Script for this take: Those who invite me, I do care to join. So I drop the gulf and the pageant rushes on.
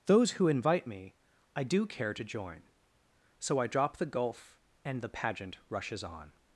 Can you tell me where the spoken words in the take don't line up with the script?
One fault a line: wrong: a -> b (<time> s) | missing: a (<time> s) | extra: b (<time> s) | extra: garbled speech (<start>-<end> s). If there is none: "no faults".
no faults